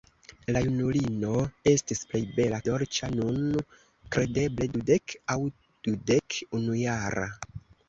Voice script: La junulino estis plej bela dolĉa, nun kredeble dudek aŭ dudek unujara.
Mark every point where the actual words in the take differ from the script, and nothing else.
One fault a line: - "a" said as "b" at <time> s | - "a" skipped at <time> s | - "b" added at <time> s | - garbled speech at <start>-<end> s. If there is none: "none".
none